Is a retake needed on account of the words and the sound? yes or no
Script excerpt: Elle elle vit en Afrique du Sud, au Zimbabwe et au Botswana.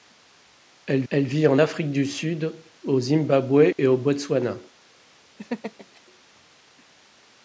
yes